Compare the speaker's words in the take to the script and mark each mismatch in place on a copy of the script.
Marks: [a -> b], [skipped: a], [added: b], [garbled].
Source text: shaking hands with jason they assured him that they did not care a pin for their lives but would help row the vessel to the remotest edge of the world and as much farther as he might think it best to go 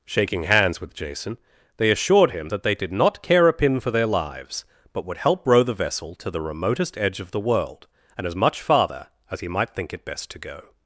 shaking hands with jason they assured him that they did not care a pin for their lives but would help row the vessel to the remotest edge of the world and as much farther as he might think it best to go